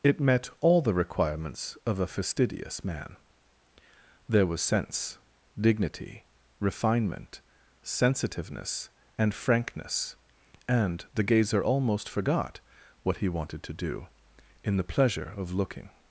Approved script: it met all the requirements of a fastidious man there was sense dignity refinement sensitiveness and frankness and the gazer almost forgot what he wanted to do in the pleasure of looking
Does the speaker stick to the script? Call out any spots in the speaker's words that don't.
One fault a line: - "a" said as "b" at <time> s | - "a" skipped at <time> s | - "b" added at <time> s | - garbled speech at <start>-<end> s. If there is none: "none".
none